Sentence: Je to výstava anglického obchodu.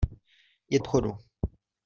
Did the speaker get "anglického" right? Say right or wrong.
wrong